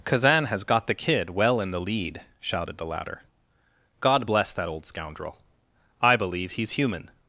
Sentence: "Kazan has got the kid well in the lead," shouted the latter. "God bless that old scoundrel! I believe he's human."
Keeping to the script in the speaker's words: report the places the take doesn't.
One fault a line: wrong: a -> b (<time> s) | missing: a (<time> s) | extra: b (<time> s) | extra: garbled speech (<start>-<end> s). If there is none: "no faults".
no faults